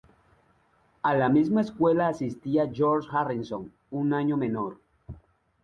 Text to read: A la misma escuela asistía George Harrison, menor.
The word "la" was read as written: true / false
true